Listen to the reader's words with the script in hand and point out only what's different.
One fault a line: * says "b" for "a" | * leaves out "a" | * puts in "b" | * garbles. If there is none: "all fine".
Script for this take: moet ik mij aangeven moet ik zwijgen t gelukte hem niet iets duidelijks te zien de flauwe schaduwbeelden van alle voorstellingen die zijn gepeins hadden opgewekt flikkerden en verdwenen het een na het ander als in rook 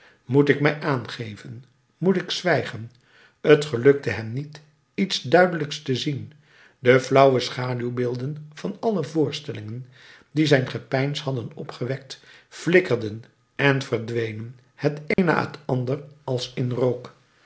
all fine